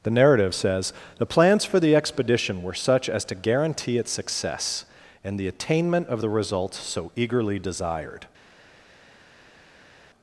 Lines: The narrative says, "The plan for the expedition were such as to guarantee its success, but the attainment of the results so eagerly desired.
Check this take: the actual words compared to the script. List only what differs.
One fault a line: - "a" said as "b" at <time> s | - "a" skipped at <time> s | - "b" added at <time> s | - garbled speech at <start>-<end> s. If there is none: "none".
- "plan" said as "plans" at 1.3 s
- "but" said as "and" at 5.2 s